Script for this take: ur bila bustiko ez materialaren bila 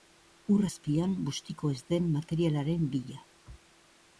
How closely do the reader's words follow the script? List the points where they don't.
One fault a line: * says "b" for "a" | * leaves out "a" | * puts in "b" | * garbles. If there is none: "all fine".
* says "azpian" for "bila"
* puts in "den"